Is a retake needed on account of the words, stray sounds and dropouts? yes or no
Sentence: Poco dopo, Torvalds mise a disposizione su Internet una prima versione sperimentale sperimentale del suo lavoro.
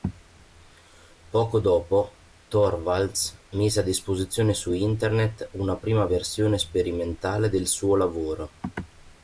yes